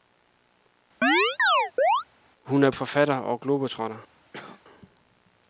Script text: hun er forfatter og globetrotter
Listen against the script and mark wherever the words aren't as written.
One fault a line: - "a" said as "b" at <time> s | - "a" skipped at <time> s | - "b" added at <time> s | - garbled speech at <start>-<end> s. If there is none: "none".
none